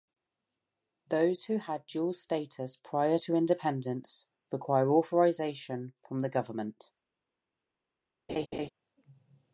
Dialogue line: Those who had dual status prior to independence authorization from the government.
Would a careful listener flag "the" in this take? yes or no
no